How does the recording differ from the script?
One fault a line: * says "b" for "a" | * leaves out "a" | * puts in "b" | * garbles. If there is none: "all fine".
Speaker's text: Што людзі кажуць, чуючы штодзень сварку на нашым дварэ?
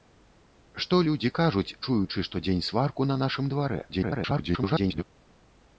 * garbles